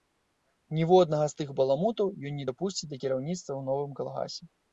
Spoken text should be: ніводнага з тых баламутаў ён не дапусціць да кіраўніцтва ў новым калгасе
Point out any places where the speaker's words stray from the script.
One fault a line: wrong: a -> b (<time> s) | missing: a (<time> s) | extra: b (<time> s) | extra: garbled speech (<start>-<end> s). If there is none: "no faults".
no faults